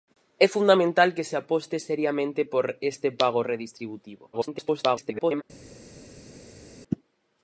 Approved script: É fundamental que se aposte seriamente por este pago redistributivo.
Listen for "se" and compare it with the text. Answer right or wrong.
right